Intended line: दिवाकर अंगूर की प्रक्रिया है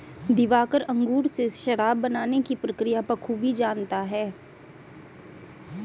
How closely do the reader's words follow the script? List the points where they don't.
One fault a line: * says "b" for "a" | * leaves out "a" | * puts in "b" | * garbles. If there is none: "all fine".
* puts in "से शराब बनाने"
* puts in "बखूबी जानता"